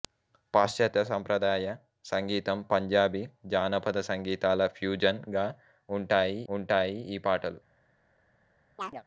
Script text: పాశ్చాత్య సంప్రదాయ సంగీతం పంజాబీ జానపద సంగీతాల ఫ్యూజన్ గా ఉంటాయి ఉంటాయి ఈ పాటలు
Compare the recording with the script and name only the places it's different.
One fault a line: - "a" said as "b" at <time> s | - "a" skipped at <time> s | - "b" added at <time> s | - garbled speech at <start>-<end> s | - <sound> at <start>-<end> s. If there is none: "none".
- chirp at 8.8-9.0 s